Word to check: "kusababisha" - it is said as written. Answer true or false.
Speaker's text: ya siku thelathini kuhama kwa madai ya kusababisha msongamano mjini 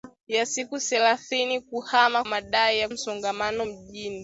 false